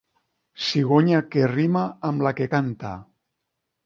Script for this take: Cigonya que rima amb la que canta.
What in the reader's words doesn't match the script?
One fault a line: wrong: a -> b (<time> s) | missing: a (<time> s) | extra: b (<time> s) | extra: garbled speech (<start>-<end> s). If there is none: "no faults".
no faults